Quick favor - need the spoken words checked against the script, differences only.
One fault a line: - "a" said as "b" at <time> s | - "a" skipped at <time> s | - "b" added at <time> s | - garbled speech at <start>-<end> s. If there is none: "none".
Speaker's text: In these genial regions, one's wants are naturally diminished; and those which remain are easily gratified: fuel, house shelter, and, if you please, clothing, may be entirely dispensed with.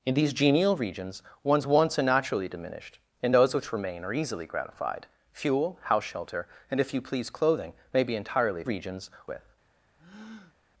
- "dispensed" said as "regions" at 8.6 s